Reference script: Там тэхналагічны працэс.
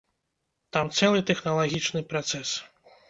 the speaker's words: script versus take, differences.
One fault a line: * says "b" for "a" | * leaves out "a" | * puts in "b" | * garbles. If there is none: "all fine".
* puts in "цэлы"